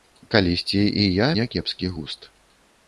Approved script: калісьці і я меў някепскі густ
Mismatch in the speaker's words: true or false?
true